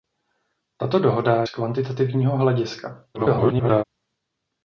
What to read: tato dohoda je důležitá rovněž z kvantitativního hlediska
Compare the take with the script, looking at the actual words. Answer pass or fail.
fail